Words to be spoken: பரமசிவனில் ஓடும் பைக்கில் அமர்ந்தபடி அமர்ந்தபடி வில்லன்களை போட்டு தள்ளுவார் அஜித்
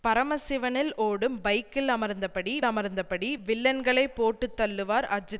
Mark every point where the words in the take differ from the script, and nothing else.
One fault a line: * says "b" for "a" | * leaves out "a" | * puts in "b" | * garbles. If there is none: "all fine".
all fine